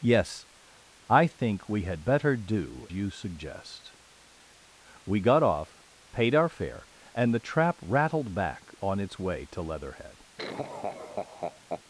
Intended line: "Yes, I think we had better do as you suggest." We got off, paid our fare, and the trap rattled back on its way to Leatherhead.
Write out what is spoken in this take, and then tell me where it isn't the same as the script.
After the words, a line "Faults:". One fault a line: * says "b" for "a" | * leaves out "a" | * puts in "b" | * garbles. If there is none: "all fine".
"Yes, I think we had better do you suggest." We got off, paid our fare, and the trap rattled back on its way to Leatherhead.
Faults:
* leaves out "as"